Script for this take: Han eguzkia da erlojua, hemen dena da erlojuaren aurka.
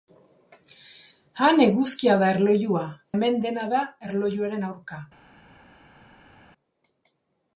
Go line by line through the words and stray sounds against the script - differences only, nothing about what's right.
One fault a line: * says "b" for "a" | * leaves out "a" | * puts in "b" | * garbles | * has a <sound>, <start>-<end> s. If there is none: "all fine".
all fine